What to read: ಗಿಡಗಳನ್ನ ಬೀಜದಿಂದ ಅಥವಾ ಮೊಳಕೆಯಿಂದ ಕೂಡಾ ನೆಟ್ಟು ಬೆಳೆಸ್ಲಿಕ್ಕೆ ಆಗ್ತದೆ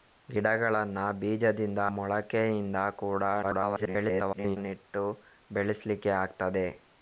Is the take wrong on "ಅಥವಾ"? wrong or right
wrong